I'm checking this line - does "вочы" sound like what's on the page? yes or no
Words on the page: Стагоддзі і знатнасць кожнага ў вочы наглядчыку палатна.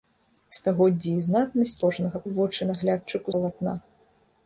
yes